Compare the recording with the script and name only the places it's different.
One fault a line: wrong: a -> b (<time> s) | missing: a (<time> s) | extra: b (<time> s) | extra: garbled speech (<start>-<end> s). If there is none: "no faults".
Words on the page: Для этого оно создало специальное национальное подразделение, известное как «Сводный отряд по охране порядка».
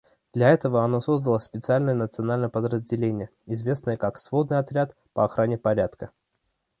no faults